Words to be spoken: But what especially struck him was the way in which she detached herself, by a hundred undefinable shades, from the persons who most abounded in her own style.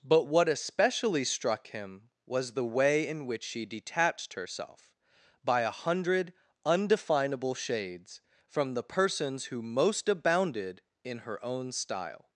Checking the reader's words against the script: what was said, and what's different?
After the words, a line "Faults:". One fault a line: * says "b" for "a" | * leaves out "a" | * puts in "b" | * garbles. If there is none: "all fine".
But what especially struck him was the way in which she detached herself, by a hundred undefinable shades, from the persons who most abounded in her own style.
Faults:
all fine